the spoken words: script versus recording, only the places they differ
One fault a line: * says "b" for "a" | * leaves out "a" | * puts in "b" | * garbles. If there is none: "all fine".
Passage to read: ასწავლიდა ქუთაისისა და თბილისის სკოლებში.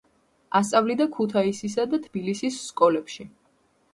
all fine